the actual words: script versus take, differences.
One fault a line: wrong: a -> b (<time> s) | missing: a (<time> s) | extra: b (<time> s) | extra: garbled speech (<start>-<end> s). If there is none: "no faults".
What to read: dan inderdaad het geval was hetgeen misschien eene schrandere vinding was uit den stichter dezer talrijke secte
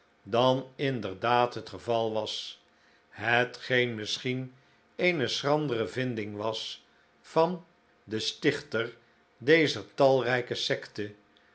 wrong: uit -> van (7.2 s)